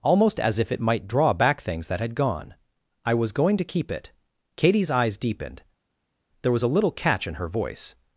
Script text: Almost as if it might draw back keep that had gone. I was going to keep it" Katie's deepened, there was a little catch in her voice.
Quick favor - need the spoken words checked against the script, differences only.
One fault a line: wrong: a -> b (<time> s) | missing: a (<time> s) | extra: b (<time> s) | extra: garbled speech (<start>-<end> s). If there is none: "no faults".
wrong: keep -> things (1.6 s)
extra: eyes (4.9 s)